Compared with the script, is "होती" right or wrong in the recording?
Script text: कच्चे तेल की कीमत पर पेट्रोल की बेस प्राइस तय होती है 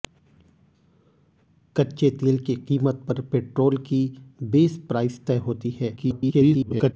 right